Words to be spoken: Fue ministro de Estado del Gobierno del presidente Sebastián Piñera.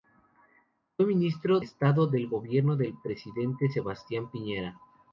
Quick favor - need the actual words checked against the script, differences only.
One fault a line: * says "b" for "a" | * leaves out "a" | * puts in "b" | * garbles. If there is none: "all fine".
* leaves out "de"